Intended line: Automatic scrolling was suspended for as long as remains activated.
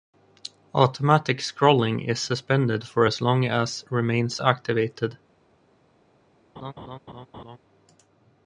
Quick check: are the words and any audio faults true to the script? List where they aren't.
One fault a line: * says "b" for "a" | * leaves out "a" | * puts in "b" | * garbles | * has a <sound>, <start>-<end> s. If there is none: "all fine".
* says "is" for "was"
* has a laugh, 6.6-7.6 s